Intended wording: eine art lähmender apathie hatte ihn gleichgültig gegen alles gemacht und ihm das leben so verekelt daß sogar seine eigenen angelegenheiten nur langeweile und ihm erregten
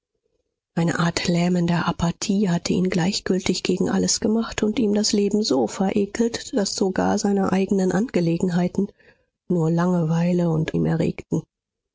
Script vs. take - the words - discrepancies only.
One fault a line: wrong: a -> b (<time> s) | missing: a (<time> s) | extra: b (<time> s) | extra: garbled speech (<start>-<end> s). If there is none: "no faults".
no faults